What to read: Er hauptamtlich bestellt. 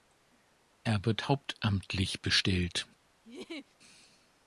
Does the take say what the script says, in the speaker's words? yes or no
no